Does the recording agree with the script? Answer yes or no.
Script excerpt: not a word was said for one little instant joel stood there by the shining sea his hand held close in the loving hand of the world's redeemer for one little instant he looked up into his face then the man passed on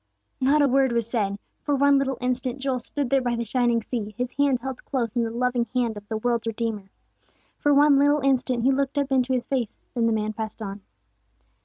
yes